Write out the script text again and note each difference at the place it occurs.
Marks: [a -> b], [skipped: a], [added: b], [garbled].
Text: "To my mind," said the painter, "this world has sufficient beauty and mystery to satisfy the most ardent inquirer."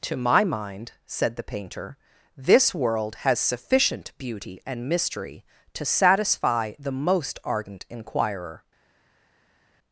"To my mind," said the painter, "this world has sufficient beauty and mystery to satisfy the most ardent inquirer."